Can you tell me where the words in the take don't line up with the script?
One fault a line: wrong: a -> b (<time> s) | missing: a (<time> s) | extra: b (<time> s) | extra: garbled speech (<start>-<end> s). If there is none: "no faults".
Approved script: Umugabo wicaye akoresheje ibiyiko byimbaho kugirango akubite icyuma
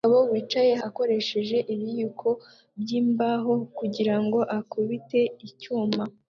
no faults